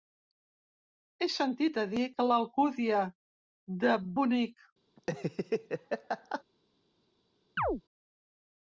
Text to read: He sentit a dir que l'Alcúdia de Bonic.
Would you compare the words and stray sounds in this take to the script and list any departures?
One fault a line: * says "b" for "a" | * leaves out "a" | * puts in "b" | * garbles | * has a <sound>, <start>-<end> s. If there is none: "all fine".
* has a laugh, 5.0-6.4 s
* has a chirp, 7.6-7.8 s